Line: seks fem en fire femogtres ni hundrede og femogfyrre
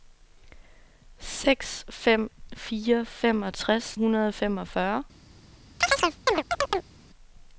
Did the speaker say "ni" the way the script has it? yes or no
no